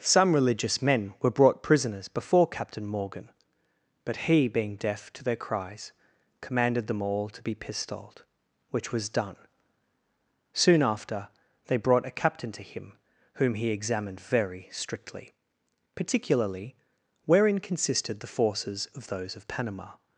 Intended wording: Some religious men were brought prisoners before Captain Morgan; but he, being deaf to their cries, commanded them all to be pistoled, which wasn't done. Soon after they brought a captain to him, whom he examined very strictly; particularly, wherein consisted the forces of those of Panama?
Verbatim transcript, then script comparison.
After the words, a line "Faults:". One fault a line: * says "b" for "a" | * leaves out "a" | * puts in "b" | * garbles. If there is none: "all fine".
Some religious men were brought prisoners before Captain Morgan; but he, being deaf to their cries, commanded them all to be pistoled, which was done. Soon after they brought a captain to him, whom he examined very strictly; particularly, wherein consisted the forces of those of Panama?
Faults:
* says "was" for "wasn't"